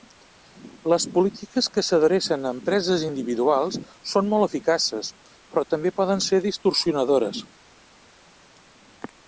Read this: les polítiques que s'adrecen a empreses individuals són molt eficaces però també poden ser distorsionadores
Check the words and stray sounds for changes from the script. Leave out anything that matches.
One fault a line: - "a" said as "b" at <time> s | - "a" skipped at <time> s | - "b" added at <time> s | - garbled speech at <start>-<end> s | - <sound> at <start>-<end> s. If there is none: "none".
none